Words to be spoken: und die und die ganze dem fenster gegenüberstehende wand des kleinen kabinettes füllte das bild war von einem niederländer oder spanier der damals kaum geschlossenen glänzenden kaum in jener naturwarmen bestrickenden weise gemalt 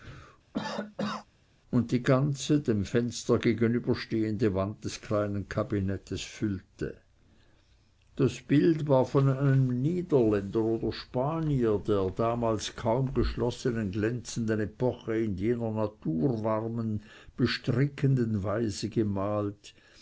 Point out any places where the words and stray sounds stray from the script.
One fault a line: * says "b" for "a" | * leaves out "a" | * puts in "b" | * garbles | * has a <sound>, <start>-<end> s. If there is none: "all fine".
* has a cough, 0.5-1.3 s
* leaves out "und die"
* says "epoche" for "kaum"